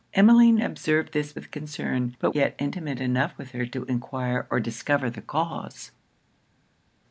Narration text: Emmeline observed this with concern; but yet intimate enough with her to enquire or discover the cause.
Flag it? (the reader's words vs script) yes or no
no